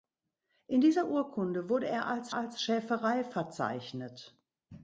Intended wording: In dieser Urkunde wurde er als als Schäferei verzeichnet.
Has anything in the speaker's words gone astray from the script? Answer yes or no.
no